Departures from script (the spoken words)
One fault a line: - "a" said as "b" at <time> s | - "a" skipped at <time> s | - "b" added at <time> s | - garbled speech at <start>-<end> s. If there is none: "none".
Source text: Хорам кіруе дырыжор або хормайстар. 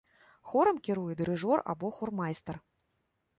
none